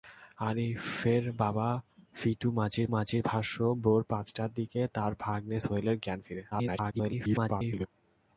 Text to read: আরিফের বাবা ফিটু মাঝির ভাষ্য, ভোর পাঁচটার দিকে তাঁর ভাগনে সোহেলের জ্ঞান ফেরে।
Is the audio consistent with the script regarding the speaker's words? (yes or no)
no